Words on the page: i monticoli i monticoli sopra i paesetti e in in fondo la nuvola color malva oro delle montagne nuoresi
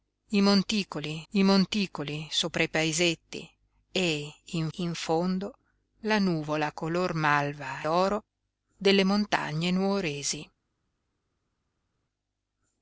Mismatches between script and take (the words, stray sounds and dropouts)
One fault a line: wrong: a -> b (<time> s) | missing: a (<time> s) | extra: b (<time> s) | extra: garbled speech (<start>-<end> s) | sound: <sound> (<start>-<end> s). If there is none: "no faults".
no faults